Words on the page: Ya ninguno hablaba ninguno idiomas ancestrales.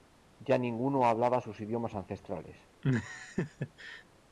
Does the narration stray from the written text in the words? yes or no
yes